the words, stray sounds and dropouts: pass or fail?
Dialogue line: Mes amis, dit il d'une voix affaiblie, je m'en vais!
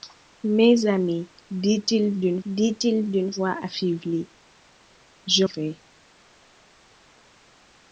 fail